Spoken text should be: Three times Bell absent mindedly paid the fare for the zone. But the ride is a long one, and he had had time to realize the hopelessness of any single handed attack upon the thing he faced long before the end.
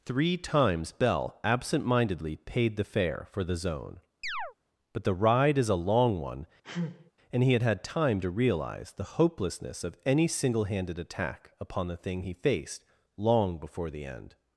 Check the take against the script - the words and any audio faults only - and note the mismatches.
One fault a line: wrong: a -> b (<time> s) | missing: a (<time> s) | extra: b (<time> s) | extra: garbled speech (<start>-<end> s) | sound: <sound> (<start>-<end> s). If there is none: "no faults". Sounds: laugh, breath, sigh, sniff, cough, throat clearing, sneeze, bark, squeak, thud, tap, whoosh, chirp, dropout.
sound: chirp (4.2-4.5 s)
sound: sneeze (6.6-7.1 s)